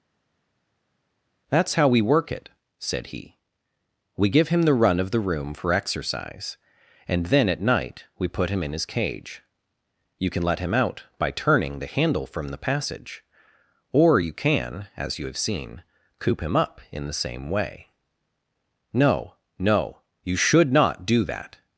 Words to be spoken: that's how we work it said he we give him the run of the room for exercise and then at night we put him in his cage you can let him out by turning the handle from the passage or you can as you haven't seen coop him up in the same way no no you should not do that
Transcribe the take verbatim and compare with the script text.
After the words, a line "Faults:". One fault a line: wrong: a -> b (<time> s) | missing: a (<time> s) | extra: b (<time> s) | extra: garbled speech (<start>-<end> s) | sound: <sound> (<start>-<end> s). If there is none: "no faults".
that's how we work it said he we give him the run of the room for exercise and then at night we put him in his cage you can let him out by turning the handle from the passage or you can as you have seen coop him up in the same way no no you should not do that
Faults:
wrong: haven't -> have (15.3 s)